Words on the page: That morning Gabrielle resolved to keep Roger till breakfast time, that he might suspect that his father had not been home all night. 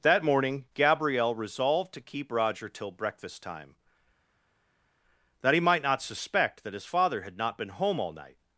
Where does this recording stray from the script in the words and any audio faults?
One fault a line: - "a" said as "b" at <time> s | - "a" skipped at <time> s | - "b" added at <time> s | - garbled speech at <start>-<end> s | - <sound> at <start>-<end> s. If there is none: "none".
- "not" added at 5.8 s